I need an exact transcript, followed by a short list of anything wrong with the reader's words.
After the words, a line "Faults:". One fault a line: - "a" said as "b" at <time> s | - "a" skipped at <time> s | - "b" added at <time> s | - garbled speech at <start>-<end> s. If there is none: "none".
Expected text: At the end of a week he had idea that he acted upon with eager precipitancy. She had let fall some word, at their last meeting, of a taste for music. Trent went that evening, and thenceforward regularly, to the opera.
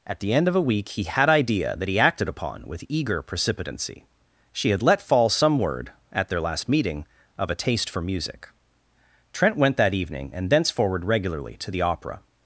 At the end of a week he had idea that he acted upon with eager precipitancy. She had let fall some word, at their last meeting, of a taste for music. Trent went that evening, and thenceforward regularly, to the opera.
Faults:
none